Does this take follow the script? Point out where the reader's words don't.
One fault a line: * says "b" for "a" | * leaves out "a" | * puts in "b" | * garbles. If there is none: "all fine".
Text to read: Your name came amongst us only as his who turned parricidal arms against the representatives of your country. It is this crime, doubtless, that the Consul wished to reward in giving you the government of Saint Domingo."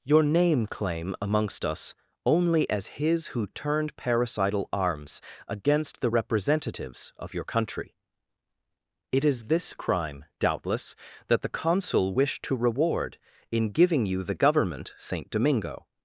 * says "claim" for "came"
* leaves out "of"